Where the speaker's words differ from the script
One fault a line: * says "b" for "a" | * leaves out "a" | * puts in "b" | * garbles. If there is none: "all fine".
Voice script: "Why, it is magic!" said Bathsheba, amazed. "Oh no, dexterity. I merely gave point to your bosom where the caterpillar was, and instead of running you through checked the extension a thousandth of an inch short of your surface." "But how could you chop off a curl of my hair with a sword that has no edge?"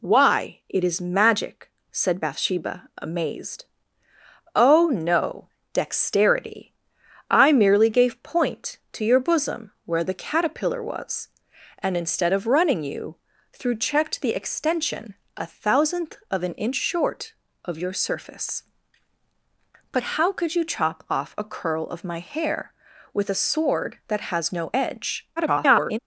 * garbles